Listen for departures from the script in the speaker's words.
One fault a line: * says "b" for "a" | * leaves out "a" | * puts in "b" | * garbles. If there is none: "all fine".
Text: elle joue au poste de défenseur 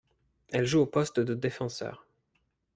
all fine